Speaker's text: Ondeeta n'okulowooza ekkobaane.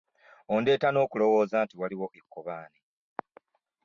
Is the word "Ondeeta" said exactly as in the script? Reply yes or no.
yes